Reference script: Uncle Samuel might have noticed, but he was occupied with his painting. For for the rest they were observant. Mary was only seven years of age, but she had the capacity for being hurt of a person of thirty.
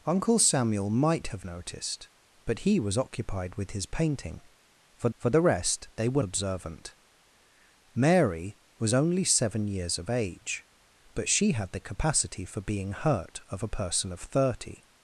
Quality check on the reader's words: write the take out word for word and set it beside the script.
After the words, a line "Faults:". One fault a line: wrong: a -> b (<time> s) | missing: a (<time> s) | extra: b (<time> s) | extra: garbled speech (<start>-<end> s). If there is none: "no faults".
Uncle Samuel might have noticed, but he was occupied with his painting. For for the rest they were observant. Mary was only seven years of age, but she had the capacity for being hurt of a person of thirty.
Faults:
no faults